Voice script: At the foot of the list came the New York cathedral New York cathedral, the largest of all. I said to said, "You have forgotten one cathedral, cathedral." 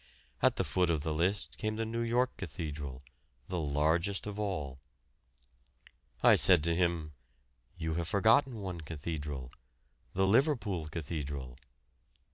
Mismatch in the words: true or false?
true